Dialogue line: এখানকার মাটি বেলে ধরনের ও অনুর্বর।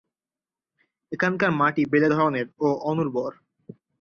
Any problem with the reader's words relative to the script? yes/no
no